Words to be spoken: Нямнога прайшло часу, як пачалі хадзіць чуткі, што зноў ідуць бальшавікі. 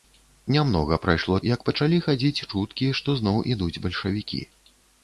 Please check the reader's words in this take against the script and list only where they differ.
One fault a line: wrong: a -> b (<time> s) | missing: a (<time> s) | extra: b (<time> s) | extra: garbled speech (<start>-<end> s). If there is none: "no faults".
missing: часу (1.4 s)